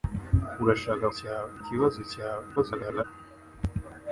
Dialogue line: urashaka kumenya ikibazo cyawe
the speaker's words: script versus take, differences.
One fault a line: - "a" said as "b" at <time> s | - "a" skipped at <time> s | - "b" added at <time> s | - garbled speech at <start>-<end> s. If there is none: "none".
- "kumenya" said as "cyawe" at 1.2 s
- garbled speech at 2.6-3.0 s